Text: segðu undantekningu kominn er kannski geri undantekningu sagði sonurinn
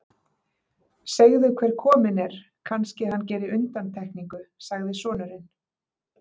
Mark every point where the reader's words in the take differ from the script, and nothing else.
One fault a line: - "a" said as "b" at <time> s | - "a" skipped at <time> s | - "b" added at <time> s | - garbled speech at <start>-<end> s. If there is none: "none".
- "undantekningu" said as "hver" at 1.6 s
- "hann" added at 3.1 s